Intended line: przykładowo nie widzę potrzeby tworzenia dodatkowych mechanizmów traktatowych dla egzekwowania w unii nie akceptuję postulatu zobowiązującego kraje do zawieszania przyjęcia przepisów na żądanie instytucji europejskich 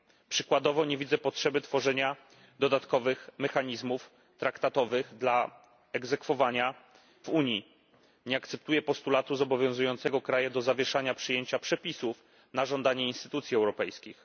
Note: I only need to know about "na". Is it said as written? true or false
true